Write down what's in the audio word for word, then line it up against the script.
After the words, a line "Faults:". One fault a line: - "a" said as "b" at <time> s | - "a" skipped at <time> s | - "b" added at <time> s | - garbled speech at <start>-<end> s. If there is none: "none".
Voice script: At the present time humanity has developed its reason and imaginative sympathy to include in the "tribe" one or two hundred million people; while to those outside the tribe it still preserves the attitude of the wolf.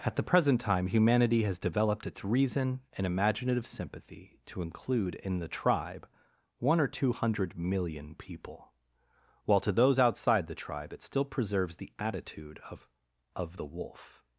At the present time humanity has developed its reason and imaginative sympathy to include in the "tribe" one or two hundred million people; while to those outside the tribe it still preserves the attitude of of the wolf.
Faults:
- "of" added at 13.3 s